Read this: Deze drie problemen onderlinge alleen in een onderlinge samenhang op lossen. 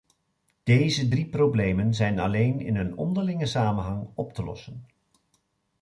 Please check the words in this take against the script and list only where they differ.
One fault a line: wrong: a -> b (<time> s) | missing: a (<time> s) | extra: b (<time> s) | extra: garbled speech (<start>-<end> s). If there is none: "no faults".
wrong: onderlinge -> zijn (1.9 s)
extra: te (4.3 s)